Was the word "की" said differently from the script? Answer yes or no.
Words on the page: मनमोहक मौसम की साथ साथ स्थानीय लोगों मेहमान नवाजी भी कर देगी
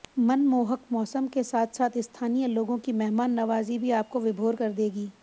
yes